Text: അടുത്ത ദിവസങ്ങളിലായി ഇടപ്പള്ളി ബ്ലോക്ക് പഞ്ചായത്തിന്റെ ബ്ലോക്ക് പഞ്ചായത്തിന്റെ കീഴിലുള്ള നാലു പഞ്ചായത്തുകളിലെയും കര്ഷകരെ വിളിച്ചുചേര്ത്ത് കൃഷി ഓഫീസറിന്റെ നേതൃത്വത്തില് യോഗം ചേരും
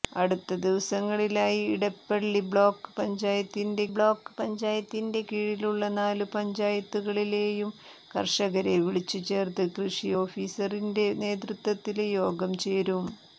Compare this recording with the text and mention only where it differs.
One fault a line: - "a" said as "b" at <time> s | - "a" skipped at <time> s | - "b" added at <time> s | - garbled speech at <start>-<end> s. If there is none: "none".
none